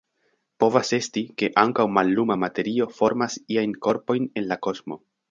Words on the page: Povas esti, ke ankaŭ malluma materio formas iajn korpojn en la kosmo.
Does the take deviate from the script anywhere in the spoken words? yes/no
no